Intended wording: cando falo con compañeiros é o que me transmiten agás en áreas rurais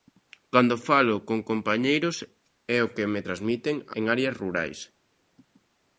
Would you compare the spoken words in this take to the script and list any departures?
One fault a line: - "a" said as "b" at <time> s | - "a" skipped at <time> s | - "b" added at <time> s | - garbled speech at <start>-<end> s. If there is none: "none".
- "agás" skipped at 3.7 s